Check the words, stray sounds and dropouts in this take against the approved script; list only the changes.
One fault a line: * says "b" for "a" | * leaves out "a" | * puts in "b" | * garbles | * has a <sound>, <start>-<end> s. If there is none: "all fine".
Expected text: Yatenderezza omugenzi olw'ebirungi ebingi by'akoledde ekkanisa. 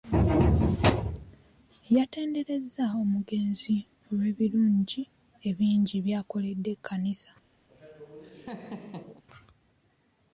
* has a laugh, 7.7-9.2 s